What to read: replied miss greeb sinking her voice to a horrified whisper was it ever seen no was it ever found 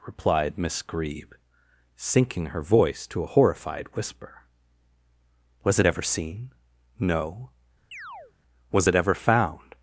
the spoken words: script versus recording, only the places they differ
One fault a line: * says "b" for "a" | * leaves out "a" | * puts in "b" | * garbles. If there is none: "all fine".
all fine